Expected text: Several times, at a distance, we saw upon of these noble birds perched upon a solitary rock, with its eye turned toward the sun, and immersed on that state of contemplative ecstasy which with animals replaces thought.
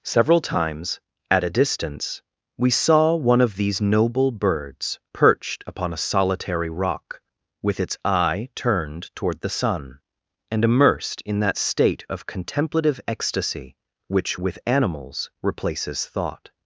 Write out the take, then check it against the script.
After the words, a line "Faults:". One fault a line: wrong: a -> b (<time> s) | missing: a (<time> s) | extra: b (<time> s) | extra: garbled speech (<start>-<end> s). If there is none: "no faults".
Several times, at a distance, we saw one of these noble birds perched upon a solitary rock, with its eye turned toward the sun, and immersed in that state of contemplative ecstasy which with animals replaces thought.
Faults:
wrong: upon -> one (3.1 s)
wrong: on -> in (11.2 s)